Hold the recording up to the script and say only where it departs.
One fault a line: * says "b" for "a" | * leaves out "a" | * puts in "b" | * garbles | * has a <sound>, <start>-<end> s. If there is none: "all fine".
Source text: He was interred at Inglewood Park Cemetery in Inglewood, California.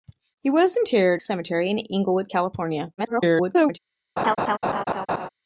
* leaves out "at Inglewood Park"
* garbles
* has a laugh, 4.2-5.3 s